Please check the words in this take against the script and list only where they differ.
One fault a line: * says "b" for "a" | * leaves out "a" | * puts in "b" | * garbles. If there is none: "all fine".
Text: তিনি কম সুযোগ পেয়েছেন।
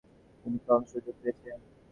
all fine